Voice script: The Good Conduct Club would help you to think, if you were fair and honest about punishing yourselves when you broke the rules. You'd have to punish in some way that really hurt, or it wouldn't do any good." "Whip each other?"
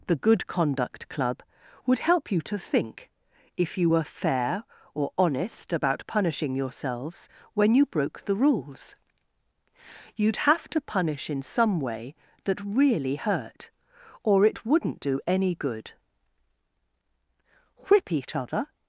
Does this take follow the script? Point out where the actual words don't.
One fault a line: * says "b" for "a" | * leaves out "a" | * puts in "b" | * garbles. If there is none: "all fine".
* says "or" for "and"